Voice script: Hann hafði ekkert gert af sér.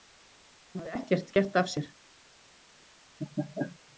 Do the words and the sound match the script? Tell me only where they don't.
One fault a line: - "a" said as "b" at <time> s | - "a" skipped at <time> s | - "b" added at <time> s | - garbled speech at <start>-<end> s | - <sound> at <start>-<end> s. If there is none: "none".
- laugh at 3.2-3.8 s